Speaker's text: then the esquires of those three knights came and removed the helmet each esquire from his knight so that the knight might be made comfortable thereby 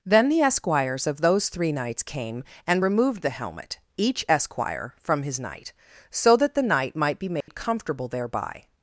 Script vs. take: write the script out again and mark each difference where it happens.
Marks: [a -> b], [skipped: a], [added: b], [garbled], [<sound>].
then the esquires of those three knights came and removed the helmet each esquire from his knight so that the knight might be made [dropout] comfortable thereby